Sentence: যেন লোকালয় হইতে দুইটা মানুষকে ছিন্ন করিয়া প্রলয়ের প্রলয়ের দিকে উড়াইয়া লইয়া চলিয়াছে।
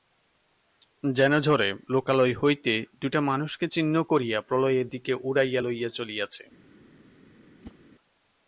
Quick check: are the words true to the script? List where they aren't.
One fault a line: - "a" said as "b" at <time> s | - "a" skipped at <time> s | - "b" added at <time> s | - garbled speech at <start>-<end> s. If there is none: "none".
- "ঝড়ে" added at 1.4 s
- "প্রলয়ের" skipped at 4.9 s